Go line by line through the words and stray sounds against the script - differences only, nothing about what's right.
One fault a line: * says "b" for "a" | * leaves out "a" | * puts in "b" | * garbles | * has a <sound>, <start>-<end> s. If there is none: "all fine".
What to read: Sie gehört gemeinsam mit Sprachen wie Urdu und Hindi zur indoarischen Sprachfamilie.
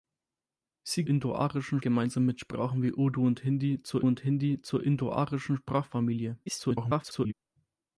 * says "indoarischen" for "gehört"
* puts in "und Hindi zur"
* garbles